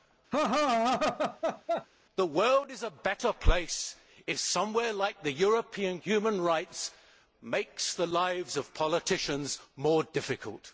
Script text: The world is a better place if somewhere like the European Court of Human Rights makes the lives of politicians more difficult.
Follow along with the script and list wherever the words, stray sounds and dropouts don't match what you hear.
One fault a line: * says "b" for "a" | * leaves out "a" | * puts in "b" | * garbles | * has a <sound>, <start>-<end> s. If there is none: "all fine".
* has a laugh, 0.3-1.9 s
* leaves out "Court of"